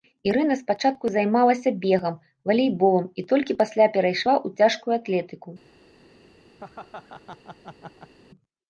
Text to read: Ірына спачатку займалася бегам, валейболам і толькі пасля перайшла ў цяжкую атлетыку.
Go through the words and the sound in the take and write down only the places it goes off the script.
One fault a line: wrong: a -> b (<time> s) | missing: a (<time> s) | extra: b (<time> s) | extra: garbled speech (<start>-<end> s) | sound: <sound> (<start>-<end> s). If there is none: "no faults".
sound: laugh (6.6-8.1 s)